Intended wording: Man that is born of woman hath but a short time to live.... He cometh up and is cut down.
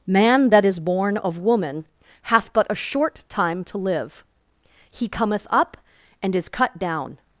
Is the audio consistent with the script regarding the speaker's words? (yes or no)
yes